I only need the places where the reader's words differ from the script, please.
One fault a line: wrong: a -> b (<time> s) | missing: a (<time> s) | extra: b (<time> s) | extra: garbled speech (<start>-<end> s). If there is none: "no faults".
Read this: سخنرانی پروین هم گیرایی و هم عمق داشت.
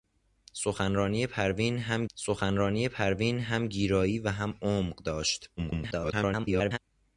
extra: سخنرانی پروین هم (2.2 s)
extra: garbled speech (5.6-6.8 s)